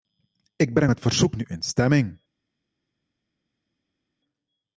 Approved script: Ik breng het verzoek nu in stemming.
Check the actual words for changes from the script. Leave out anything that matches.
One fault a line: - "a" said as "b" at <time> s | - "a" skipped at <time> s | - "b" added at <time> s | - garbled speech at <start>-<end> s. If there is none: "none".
none